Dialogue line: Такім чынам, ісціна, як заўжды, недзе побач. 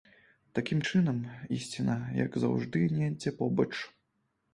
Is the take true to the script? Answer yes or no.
yes